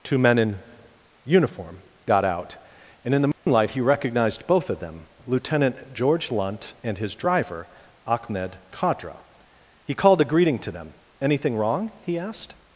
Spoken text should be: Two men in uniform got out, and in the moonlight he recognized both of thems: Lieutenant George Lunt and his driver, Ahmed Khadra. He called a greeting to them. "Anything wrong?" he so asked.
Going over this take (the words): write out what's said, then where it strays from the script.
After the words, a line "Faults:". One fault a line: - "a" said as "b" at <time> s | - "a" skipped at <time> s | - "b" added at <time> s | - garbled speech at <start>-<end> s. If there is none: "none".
Two men in uniform got out, and in the moonlight he recognized both of them: Lieutenant George Lunt and his driver, Ahmed Khadra. He called a greeting to them. "Anything wrong?" he asked.
Faults:
- "thems" said as "them" at 4.8 s
- "so" skipped at 12.2 s